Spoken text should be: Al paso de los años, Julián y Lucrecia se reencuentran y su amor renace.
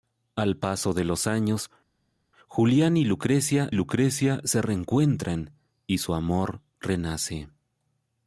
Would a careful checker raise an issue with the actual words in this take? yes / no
yes